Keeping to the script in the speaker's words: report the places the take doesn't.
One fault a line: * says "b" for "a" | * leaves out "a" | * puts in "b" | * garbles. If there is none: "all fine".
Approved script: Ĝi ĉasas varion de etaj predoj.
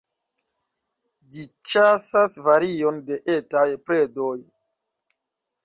all fine